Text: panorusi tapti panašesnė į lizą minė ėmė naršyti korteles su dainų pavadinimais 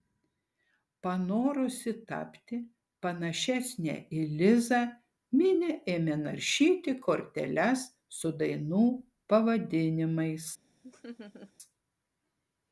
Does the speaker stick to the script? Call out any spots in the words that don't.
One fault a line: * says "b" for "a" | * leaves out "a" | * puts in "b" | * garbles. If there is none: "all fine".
all fine